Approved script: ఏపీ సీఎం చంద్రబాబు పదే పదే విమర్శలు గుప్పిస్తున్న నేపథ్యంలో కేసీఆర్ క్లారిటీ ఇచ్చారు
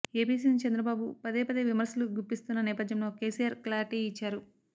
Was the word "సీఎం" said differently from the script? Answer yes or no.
no